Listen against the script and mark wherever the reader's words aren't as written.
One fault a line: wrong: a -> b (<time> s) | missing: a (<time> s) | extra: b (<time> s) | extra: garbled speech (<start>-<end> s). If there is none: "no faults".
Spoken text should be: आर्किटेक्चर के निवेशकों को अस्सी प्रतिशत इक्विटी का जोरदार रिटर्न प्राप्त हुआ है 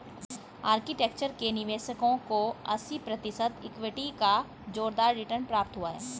no faults